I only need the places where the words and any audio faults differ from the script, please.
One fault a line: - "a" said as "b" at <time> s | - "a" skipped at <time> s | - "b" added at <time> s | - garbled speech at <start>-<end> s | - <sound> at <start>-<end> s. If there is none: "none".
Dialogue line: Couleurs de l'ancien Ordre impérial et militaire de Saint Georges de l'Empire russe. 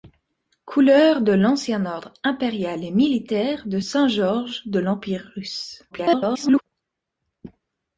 - garbled speech at 5.9-6.6 s